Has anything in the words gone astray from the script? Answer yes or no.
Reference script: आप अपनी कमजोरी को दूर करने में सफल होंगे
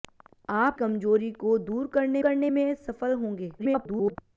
yes